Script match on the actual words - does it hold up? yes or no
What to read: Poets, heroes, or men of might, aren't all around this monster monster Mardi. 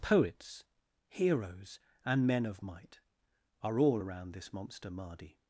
no